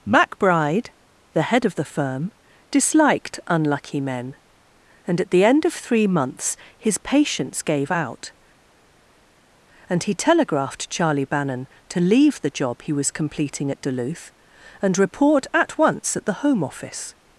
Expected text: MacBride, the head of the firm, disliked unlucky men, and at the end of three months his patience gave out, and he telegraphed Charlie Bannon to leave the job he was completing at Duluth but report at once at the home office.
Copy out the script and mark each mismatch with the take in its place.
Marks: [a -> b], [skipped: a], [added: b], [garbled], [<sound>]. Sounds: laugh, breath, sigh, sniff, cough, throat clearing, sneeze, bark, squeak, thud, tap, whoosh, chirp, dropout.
MacBride, the head of the firm, disliked unlucky men, and at the end of three months his patience gave out, and he telegraphed Charlie Bannon to leave the job he was completing at Duluth [but -> and] report at once at the home office.